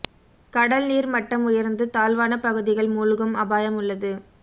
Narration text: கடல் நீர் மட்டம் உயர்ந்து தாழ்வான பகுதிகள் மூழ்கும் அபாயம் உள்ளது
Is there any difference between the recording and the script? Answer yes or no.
no